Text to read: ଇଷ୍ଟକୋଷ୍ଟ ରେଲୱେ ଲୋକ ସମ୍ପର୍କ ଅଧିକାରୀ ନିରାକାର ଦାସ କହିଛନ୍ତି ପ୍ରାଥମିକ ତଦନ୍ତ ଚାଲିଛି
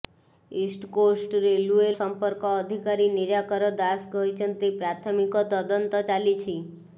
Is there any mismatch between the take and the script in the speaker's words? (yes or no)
yes